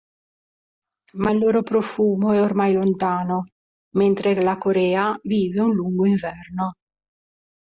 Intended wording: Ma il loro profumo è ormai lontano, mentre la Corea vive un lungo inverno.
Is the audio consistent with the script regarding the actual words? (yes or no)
yes